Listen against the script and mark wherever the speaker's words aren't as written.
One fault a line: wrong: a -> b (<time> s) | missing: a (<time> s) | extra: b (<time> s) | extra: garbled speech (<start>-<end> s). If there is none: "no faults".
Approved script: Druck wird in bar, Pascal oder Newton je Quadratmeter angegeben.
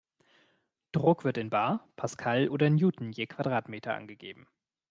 no faults